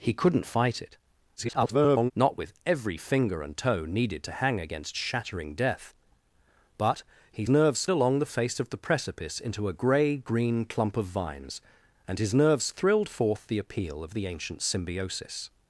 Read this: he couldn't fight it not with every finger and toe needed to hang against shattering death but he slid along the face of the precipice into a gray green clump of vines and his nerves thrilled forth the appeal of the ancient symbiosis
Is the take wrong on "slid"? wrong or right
wrong